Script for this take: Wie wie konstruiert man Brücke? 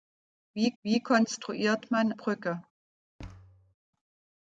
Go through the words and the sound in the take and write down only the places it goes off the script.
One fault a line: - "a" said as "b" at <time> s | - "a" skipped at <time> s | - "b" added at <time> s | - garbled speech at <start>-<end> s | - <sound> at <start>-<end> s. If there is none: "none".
- thud at 3.2-3.7 s